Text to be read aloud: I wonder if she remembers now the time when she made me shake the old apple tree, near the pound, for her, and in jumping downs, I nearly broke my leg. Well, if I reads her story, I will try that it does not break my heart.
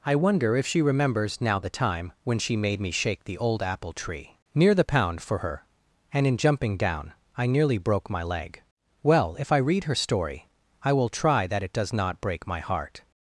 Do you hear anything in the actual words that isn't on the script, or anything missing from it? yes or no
yes